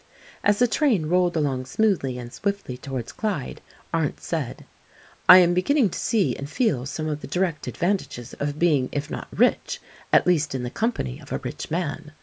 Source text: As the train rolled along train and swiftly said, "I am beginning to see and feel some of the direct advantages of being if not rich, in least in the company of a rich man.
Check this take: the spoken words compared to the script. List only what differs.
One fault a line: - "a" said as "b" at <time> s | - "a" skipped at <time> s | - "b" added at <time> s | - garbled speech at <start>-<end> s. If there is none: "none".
- "train" said as "smoothly" at 1.7 s
- "towards Clyde Arndt" added at 2.8 s
- "in" said as "at" at 10.1 s